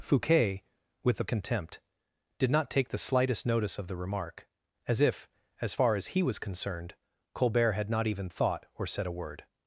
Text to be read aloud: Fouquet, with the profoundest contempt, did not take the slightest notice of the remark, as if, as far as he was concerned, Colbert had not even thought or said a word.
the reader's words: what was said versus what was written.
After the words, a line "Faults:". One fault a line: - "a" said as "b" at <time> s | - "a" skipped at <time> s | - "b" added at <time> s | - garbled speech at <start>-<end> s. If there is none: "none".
Fouquet, with the contempt, did not take the slightest notice of the remark, as if, as far as he was concerned, Colbert had not even thought or said a word.
Faults:
- "profoundest" skipped at 1.2 s